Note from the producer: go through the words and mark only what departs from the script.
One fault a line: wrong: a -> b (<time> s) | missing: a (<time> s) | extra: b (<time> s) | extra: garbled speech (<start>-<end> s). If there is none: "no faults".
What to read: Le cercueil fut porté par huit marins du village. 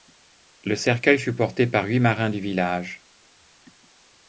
no faults